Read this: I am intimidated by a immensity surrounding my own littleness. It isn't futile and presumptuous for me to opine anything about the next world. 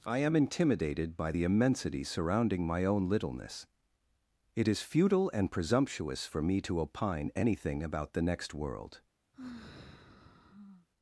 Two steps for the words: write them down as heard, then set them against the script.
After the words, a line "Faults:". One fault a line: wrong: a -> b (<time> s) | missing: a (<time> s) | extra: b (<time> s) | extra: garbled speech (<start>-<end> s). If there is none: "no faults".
I am intimidated by the immensity surrounding my own littleness. It is futile and presumptuous for me to opine anything about the next world.
Faults:
wrong: a -> the (1.3 s)
wrong: isn't -> is (4.7 s)